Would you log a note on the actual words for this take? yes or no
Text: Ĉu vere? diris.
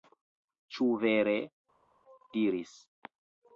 no